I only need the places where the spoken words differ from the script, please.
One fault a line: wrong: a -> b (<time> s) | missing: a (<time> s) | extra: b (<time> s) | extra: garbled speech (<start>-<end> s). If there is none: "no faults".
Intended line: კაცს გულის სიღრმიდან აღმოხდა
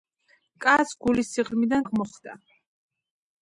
no faults